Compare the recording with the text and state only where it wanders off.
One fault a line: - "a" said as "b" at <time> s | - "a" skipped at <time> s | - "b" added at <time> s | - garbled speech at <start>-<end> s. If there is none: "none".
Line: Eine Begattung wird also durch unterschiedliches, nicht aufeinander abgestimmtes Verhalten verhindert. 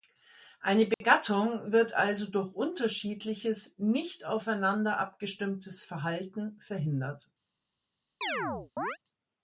none